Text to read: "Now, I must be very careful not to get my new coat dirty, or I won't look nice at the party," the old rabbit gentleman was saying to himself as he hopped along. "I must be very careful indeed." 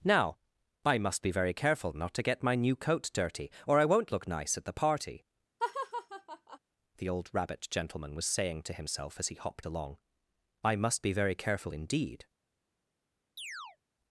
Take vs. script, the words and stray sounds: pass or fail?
fail